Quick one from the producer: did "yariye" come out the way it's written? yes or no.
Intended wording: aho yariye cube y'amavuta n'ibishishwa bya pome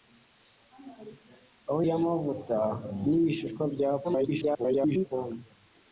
no